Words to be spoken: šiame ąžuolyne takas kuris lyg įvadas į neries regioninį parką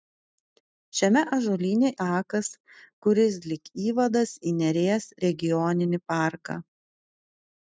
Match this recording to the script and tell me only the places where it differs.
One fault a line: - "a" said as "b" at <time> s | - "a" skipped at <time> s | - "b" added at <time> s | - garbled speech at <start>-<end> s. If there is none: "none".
none